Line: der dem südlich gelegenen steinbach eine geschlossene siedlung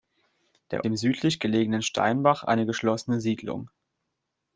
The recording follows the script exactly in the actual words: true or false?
true